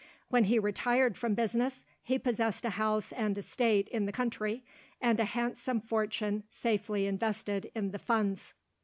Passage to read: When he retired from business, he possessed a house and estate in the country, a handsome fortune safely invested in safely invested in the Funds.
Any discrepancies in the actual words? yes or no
yes